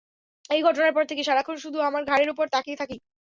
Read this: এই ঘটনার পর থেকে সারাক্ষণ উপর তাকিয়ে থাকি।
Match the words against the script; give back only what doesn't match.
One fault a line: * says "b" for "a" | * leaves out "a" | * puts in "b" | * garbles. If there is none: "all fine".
* puts in "শুধু আমার ঘাড়ের"